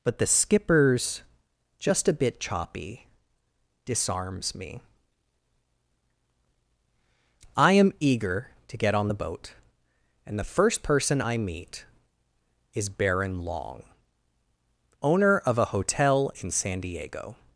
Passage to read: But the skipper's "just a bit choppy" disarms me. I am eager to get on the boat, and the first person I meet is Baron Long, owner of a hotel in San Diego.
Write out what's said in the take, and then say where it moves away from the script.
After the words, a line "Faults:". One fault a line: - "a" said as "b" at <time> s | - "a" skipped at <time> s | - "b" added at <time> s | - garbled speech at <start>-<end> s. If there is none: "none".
But the skipper's "just a bit choppy" disarms me. I am eager to get on the boat, and the first person I meet is Baron Long, owner of a hotel in San Diego.
Faults:
none